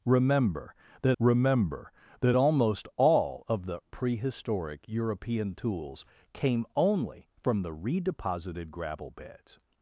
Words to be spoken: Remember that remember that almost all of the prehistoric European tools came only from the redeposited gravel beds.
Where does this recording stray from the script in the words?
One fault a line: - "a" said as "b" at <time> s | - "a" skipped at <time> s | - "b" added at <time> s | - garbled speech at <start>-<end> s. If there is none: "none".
none